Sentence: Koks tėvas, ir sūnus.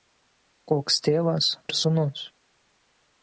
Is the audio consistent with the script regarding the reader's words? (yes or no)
yes